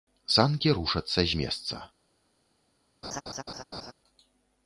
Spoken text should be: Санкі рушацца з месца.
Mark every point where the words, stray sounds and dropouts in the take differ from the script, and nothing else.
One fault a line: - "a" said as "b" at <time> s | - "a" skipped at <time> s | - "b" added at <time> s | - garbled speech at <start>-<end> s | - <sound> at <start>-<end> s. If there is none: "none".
- laugh at 3.0-3.9 s